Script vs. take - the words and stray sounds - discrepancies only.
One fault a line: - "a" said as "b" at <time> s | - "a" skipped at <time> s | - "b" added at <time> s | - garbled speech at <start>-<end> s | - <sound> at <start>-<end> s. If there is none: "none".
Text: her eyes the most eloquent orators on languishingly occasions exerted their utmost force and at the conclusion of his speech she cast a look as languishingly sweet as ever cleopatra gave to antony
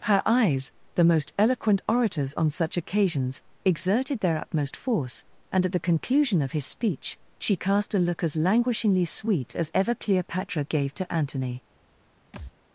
- "languishingly" said as "such" at 2.5 s
- thud at 12.3-12.5 s